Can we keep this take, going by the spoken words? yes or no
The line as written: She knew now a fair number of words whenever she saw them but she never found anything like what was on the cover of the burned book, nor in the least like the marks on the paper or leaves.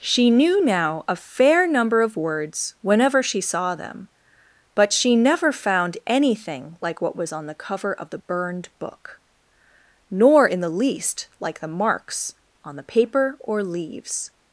yes